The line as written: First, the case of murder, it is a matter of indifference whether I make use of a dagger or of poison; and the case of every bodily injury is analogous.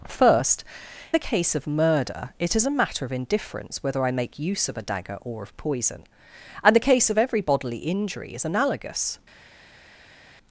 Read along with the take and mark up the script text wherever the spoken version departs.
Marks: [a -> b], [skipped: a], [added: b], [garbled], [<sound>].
First, the case of murder, it is a matter of indifference whether I make use of a dagger or of poison; and the case of every bodily injury is analogous.